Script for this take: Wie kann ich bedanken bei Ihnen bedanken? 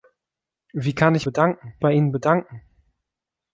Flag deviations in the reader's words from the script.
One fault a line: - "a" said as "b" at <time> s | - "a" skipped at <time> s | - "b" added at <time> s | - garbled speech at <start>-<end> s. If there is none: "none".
none